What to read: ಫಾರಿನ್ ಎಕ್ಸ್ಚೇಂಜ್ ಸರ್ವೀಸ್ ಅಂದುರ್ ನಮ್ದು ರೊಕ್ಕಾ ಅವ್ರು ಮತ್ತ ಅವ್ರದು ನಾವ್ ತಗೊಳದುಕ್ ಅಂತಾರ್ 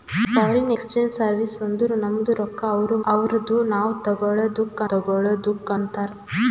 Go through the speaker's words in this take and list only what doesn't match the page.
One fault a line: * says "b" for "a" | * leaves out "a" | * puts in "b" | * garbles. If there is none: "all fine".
* leaves out "ಮತ್ತ"
* puts in "ತಗೊಳದುಕ್"